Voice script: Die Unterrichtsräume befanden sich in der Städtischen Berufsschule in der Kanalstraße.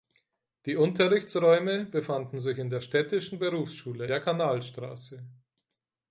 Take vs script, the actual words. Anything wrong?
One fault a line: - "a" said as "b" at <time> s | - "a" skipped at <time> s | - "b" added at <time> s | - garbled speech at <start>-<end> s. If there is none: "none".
- "in" skipped at 4.1 s